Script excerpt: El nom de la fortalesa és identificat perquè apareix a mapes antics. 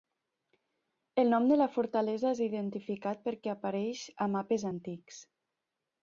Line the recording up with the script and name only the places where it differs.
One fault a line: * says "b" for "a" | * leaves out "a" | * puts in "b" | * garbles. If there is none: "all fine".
all fine